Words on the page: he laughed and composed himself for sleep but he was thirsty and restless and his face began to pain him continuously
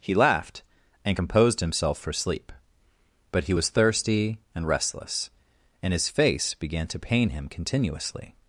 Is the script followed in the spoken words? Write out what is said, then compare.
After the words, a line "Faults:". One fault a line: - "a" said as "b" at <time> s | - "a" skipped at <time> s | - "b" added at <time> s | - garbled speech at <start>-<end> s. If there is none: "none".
he laughed and composed himself for sleep but he was thirsty and restless and his face began to pain him continuously
Faults:
none